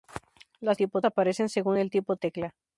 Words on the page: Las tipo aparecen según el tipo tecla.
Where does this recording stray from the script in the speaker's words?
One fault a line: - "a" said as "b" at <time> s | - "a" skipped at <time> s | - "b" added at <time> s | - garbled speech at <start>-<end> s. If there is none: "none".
none